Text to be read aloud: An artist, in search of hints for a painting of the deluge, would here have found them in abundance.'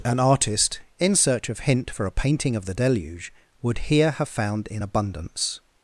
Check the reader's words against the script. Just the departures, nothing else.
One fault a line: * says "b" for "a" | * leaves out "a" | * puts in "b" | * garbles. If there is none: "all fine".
* says "hint" for "hints"
* leaves out "them"